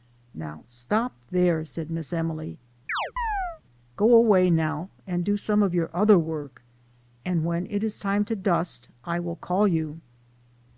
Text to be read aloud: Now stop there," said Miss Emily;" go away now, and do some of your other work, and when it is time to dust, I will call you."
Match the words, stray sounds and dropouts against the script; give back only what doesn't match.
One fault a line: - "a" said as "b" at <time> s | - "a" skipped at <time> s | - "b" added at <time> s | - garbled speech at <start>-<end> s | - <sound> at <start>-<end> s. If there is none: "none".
- chirp at 2.9-3.6 s